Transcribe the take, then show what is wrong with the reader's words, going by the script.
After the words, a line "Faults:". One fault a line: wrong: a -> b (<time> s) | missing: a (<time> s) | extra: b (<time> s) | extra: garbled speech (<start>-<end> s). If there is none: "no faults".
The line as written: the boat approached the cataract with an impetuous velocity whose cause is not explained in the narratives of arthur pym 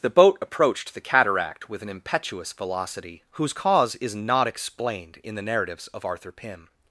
the boat approached the cataract with an impetuous velocity whose cause is not explained in the narratives of arthur pym
Faults:
no faults